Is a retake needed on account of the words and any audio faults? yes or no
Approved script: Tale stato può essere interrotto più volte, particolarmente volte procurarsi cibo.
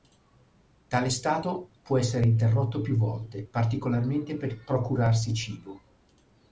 yes